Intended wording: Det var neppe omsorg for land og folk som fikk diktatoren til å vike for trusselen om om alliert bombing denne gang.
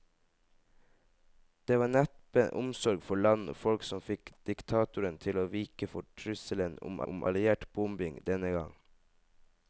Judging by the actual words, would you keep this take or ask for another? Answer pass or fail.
pass